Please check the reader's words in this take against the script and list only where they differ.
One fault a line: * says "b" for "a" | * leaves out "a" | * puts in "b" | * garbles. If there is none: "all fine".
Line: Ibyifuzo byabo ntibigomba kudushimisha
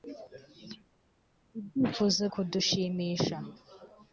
* leaves out "byabo ntibigomba"